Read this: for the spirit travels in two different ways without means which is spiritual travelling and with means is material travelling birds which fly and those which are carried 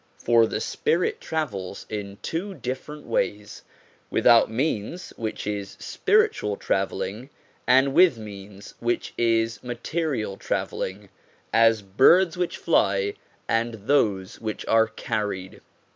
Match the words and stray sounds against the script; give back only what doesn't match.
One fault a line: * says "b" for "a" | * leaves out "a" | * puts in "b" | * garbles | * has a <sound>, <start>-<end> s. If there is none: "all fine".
* puts in "which"
* puts in "as"